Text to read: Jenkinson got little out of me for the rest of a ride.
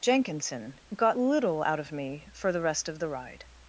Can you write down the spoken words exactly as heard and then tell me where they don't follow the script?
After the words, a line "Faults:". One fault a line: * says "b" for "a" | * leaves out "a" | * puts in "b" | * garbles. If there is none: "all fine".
Jenkinson got little out of me for the rest of the ride.
Faults:
* says "the" for "a"